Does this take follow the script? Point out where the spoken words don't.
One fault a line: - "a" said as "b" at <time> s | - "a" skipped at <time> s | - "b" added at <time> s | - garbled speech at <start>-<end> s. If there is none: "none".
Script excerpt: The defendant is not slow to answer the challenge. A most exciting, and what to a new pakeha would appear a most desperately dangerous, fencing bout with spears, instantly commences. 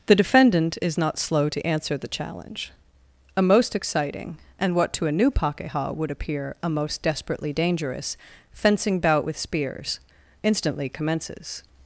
none